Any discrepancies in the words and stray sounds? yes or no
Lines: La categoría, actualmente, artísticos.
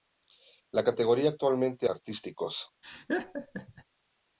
yes